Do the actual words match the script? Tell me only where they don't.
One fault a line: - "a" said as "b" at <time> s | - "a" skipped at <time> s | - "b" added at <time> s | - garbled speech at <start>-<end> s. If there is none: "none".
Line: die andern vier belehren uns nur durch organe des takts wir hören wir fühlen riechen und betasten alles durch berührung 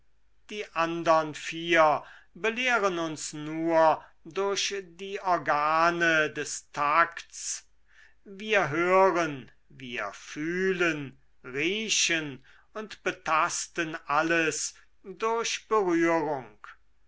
- "die" added at 4.8 s